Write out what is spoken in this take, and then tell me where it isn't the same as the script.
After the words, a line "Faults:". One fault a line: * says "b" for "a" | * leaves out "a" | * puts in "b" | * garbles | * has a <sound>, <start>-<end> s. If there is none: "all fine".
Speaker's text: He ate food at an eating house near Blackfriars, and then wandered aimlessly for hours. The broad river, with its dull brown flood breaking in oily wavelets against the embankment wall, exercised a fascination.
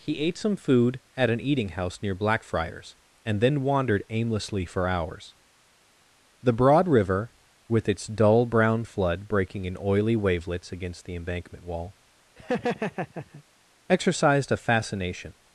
He ate some food at an eating house near Blackfriars, and then wandered aimlessly for hours. The broad river, with its dull brown flood breaking in oily wavelets against the embankment wall, exercised a fascination.
Faults:
* puts in "some"
* has a laugh, 12.4-13.4 s